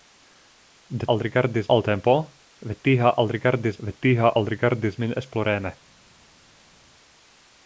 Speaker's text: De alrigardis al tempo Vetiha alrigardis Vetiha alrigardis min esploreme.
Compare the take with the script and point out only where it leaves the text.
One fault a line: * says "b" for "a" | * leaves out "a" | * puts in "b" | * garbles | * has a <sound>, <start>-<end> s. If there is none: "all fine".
all fine